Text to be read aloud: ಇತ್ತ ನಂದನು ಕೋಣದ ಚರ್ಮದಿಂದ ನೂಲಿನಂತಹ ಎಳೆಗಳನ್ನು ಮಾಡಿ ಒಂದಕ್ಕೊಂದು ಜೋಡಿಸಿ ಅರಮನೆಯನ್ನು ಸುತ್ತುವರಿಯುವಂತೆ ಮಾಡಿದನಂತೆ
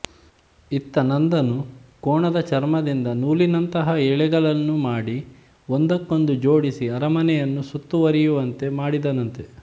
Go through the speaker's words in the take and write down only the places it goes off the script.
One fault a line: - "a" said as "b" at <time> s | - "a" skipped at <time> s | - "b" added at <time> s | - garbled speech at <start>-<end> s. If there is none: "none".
none